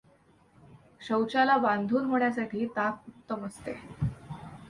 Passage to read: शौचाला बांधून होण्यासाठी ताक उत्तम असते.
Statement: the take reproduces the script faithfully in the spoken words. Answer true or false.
true